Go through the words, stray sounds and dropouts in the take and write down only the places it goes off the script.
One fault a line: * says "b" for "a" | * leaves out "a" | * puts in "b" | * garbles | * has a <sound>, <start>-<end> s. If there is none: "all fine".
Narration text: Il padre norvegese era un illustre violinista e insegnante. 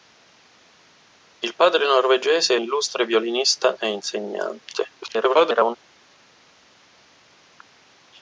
* leaves out "era un"
* garbles